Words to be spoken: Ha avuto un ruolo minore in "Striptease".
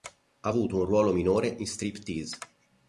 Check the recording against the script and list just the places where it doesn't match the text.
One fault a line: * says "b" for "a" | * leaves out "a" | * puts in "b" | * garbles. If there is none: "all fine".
all fine